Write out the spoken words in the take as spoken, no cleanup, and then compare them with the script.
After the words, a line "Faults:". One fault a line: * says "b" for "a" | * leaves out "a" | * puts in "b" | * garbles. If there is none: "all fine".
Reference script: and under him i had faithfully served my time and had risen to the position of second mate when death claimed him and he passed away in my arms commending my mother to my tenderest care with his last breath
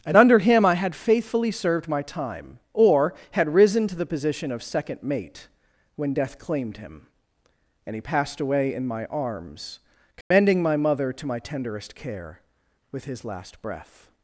and under him i had faithfully served my time or had risen to the position of second mate when death claimed him and he passed away in my arms commending my mother to my tenderest care with his last breath
Faults:
* says "or" for "and"